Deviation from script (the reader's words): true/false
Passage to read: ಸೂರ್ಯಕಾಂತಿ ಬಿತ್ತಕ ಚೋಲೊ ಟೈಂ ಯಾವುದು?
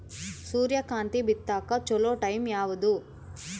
false